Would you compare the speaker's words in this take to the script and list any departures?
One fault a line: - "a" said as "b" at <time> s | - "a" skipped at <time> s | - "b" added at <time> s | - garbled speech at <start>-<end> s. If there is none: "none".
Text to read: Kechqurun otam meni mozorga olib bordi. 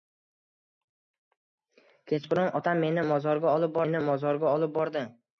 - "meni mozorga olib" added at 3.9 s